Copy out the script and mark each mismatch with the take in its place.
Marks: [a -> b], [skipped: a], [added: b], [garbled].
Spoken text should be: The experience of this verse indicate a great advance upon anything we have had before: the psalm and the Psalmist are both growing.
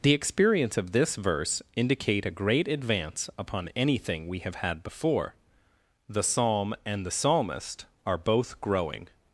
The experience of this verse indicate a great advance upon anything we have had before: the psalm and the Psalmist are both growing.